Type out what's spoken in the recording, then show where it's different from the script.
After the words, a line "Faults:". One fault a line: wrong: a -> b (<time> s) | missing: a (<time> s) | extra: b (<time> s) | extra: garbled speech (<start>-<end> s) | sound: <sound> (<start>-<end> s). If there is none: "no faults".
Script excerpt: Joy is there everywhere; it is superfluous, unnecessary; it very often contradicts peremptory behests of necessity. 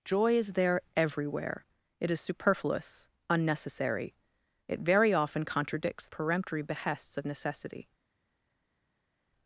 Joy is there everywhere; it is superfluous, unnecessary; it very often contradicts peremptory behests of necessity.
Faults:
no faults